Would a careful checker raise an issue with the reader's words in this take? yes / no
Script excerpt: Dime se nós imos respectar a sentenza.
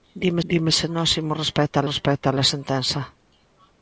yes